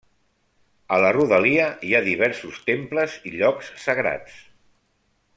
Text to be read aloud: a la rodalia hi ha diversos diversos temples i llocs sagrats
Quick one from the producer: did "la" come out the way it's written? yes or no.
yes